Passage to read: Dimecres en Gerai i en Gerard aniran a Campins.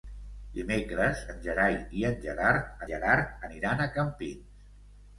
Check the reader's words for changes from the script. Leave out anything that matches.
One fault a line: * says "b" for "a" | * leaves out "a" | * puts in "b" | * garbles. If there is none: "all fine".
* puts in "Gerard"